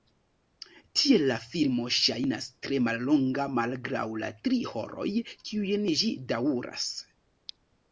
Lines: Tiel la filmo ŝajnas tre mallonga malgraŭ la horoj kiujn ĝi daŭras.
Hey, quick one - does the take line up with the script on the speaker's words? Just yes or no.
no